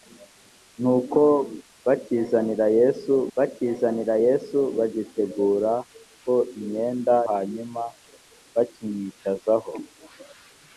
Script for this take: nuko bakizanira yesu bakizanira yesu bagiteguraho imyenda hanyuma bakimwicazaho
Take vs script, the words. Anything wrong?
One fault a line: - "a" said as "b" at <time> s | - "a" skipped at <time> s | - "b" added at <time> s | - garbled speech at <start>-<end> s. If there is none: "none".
none